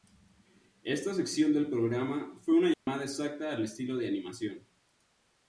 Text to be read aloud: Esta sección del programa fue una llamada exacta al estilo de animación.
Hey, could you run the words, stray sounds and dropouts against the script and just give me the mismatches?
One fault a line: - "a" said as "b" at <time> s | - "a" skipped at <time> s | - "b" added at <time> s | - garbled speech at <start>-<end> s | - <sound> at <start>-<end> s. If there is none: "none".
- dropout at 2.7-2.9 s